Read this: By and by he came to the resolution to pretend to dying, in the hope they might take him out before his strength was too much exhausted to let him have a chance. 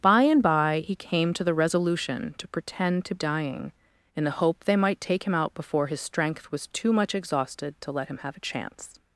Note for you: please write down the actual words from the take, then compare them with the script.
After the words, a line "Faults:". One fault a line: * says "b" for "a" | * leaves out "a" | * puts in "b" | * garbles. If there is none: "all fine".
By and by he came to the resolution to pretend to dying, in the hope they might take him out before his strength was too much exhausted to let him have a chance.
Faults:
all fine